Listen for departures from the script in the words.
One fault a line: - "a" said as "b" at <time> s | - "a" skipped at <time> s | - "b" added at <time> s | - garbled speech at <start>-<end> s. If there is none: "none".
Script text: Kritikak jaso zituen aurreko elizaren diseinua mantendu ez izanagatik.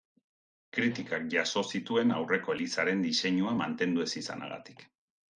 none